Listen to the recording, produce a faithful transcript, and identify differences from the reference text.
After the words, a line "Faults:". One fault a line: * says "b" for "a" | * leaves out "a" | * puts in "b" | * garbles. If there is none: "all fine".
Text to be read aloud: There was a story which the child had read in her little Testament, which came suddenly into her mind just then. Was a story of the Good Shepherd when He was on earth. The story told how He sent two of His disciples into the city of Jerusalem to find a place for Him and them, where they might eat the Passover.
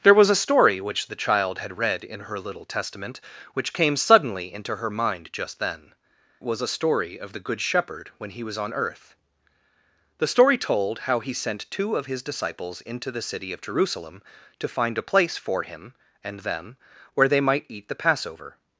There was a story which the child had read in her little Testament, which came suddenly into her mind just then. Was a story of the Good Shepherd when He was on earth. The story told how He sent two of His disciples into the city of Jerusalem to find a place for Him and them, where they might eat the Passover.
Faults:
all fine